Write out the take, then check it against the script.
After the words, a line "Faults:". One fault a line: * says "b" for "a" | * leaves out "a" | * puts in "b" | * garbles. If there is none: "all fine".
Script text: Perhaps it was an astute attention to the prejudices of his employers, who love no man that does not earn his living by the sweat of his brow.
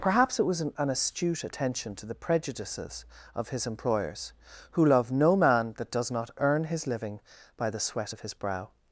Perhaps it was an an astute attention to the prejudices of his employers, who love no man that does not earn his living by the sweat of his brow.
Faults:
* puts in "an"